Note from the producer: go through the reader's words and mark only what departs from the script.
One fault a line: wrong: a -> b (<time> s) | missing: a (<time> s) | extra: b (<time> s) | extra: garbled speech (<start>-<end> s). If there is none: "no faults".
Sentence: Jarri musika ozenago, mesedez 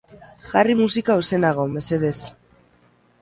no faults